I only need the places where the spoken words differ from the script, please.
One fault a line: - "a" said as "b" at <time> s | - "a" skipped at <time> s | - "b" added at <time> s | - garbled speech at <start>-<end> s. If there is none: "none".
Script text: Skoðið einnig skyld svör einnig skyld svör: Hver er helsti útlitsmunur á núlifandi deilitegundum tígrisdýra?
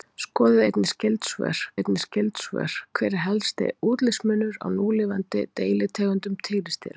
none